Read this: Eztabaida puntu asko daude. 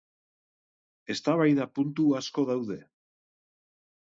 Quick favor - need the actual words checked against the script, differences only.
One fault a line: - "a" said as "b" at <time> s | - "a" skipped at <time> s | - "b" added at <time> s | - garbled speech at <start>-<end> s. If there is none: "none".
none